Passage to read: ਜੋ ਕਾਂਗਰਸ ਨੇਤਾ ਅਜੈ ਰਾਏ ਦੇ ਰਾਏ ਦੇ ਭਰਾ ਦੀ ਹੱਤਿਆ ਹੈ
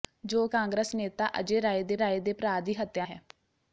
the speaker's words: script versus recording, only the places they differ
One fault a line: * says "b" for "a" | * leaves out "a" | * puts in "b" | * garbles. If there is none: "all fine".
all fine